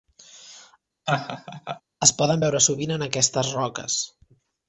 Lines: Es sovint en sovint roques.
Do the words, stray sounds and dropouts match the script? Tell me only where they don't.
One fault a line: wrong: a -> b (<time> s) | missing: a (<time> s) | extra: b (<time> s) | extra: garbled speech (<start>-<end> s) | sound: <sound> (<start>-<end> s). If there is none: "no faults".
sound: laugh (1.1-1.8 s)
extra: poden veure (2.2 s)
wrong: sovint -> aquestes (3.1 s)